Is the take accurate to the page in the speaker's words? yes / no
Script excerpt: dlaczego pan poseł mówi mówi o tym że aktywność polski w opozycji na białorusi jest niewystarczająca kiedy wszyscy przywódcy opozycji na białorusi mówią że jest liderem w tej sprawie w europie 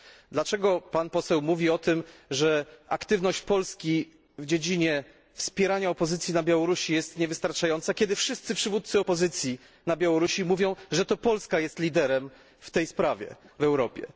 no